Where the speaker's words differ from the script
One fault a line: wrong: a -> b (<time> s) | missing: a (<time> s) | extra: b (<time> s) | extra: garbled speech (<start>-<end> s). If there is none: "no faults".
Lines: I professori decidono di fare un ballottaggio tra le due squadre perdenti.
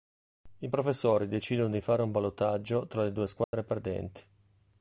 no faults